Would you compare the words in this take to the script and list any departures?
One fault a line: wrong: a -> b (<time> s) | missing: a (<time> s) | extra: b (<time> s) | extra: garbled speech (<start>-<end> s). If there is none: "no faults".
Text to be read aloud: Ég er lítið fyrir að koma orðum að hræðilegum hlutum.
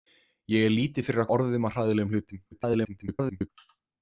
missing: koma (1.3 s)
extra: garbled speech (2.5-3.5 s)